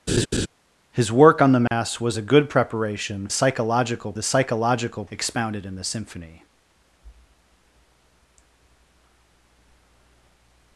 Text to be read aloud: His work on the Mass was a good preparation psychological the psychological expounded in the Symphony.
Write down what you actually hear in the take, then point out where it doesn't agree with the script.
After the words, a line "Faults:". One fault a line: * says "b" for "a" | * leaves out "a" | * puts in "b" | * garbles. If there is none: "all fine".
His work on the Mass was a good preparation psychological the psychological expounded in the Symphony.
Faults:
all fine